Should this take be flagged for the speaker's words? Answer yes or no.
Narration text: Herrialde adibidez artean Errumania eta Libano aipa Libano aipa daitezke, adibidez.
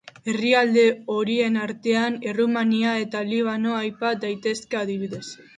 yes